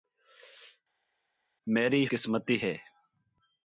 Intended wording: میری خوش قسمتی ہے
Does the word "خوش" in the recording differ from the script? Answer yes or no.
yes